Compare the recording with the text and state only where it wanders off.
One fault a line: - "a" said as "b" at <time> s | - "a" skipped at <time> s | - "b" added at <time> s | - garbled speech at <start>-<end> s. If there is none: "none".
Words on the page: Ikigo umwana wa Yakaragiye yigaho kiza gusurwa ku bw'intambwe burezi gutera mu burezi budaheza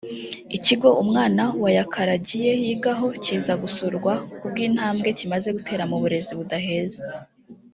- "burezi" said as "kimaze" at 5.2 s